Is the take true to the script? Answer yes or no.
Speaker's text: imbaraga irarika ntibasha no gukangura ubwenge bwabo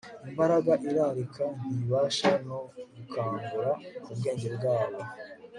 yes